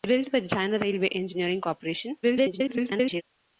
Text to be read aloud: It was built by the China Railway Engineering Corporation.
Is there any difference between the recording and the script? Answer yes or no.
yes